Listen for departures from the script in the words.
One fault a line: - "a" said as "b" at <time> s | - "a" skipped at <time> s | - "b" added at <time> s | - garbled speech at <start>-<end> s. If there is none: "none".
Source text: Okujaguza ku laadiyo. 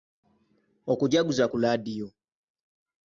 none